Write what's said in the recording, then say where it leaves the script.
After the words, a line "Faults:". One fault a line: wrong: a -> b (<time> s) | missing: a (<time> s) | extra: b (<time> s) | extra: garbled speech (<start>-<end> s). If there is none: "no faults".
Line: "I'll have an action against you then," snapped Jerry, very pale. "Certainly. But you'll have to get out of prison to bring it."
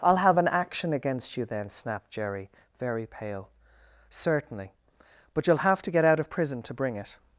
"I'll have an action against you then," snapped Jerry, very pale. "Certainly. But you'll have to get out of prison to bring it."
Faults:
no faults